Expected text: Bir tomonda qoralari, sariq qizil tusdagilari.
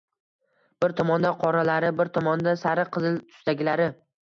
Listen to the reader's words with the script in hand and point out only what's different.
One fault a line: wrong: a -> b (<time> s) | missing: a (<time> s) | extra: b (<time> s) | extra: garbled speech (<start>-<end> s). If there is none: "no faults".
extra: bir tomonda (2.0 s)